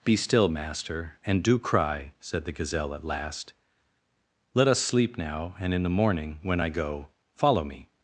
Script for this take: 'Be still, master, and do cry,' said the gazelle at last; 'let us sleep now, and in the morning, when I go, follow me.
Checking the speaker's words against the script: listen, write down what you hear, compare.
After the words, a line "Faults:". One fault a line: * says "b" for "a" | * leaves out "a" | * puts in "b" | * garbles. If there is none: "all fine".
'Be still, master, and do cry,' said the gazelle at last; 'let us sleep now, and in the morning, when I go, follow me.
Faults:
all fine